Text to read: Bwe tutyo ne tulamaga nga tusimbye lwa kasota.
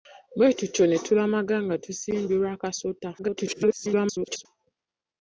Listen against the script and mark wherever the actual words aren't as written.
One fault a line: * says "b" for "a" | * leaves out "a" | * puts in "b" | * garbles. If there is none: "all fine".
* garbles